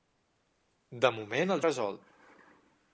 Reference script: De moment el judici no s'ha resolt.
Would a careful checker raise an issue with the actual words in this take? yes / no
yes